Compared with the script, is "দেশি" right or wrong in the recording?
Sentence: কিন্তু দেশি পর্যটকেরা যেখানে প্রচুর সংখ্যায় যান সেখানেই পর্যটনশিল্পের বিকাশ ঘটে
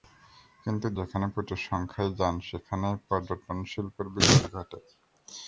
wrong